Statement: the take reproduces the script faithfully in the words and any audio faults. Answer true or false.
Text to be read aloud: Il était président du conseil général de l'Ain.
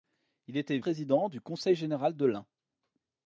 true